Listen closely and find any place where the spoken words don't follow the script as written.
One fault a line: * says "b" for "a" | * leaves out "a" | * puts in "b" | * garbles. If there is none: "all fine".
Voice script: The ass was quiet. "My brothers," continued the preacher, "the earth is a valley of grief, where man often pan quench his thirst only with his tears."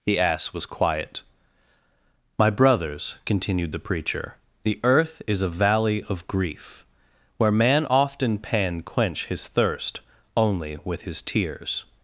all fine